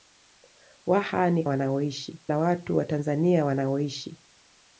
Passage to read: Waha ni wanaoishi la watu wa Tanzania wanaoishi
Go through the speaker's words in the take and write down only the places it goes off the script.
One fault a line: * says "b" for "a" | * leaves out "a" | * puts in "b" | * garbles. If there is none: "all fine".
all fine